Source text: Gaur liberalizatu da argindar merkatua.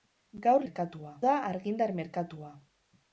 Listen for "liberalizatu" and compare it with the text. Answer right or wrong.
wrong